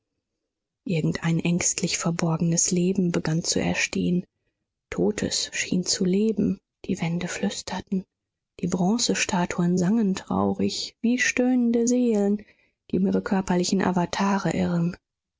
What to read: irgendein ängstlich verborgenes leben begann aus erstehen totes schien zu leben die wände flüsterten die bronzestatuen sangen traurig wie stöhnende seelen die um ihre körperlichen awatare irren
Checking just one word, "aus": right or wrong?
wrong